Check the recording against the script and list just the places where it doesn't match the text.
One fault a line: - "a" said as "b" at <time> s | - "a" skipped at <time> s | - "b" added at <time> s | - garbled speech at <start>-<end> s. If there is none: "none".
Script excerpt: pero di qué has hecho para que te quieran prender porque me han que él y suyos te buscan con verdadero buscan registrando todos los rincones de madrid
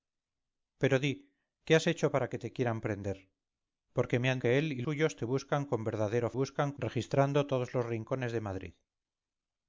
none